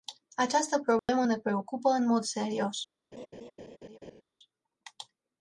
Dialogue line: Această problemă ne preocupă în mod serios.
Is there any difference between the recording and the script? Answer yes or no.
no